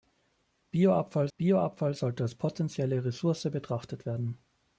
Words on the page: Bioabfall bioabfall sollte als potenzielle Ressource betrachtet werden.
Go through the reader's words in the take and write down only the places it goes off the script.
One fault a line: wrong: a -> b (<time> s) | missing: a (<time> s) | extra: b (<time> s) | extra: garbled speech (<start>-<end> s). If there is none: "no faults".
no faults